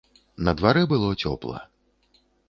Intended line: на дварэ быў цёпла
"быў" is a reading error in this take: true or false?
true